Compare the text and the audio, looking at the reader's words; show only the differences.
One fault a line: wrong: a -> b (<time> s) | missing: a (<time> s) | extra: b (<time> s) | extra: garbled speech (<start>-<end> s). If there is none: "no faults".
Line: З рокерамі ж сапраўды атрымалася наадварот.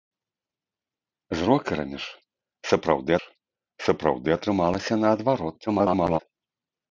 extra: ж сапраўды (3.2 s)
extra: garbled speech (5.7-6.2 s)